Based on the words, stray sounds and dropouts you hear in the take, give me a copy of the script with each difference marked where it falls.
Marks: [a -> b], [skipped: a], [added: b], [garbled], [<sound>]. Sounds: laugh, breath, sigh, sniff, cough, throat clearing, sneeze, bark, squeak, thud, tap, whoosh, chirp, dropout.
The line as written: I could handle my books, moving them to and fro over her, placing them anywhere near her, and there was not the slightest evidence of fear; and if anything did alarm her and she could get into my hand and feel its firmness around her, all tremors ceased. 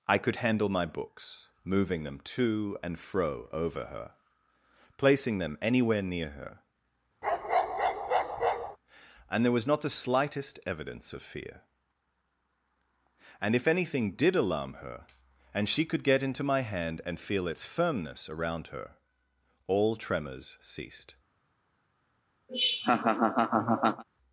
I could handle my books, moving them to and fro over her, placing them anywhere near her, [bark] and there was not the slightest evidence of fear; and if anything did alarm her and she could get into my hand and feel its firmness around her, all tremors ceased. [laugh]